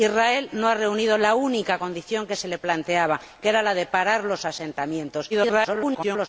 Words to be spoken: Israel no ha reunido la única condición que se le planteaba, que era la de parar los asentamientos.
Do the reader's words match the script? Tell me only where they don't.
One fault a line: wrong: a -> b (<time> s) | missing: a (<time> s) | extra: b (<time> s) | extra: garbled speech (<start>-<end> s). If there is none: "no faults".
extra: garbled speech (5.3-6.3 s)